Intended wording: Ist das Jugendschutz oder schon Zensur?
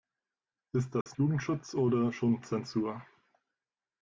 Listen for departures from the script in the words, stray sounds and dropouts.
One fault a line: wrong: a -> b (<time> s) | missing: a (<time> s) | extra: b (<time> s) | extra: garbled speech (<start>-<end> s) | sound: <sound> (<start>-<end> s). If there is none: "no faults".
sound: dropout (1.0-1.1 s)